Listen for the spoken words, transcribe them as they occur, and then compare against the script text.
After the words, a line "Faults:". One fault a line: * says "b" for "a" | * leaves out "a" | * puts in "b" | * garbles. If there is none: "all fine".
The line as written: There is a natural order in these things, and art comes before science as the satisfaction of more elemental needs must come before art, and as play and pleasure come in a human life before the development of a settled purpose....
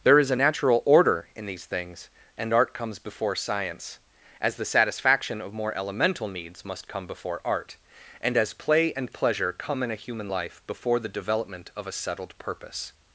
There is a natural order in these things, and art comes before science as the satisfaction of more elemental needs must come before art, and as play and pleasure come in a human life before the development of a settled purpose....
Faults:
all fine